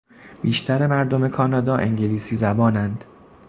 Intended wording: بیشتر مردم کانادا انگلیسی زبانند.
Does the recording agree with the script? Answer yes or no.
yes